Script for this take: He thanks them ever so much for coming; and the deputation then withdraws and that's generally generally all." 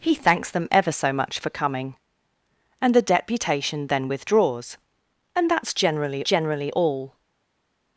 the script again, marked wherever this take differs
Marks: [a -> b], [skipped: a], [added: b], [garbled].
He thanks them ever so much for coming; and the deputation then withdraws and that's generally generally all."